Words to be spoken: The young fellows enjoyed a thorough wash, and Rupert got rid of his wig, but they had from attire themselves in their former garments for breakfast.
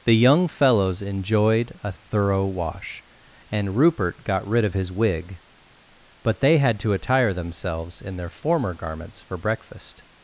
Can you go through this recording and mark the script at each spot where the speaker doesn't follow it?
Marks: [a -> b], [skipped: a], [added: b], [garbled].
The young fellows enjoyed a thorough wash, and Rupert got rid of his wig, but they had [from -> to] attire themselves in their former garments for breakfast.